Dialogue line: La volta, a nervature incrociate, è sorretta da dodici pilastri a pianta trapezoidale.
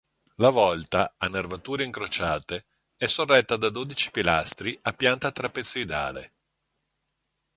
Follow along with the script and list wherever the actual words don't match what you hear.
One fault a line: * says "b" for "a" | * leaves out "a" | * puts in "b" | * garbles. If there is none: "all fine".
all fine